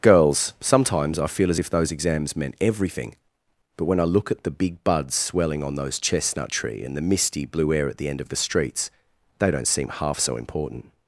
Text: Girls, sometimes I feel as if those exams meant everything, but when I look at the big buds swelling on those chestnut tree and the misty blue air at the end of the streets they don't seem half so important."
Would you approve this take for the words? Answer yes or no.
yes